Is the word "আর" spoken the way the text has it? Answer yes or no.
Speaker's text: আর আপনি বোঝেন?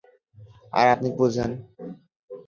yes